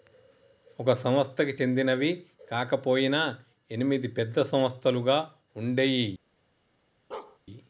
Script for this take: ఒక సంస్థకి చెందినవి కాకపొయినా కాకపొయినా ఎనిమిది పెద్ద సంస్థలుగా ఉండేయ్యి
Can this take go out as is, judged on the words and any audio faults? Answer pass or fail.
fail